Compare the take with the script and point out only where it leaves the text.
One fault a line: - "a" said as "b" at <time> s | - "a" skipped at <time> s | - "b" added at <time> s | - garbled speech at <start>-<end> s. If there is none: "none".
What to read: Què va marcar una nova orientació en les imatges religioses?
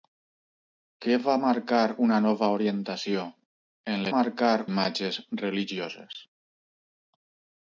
- "les" said as "marcar" at 4.1 s